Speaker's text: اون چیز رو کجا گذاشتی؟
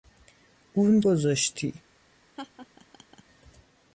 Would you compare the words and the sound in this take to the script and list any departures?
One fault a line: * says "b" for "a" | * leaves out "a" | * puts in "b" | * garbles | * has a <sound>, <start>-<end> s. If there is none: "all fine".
* leaves out "چیز رو کجا"
* has a laugh, 2.4-3.2 s